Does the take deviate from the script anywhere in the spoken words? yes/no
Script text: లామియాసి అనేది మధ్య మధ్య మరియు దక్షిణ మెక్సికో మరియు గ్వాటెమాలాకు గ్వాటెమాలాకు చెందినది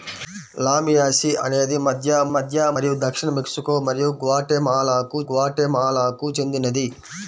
no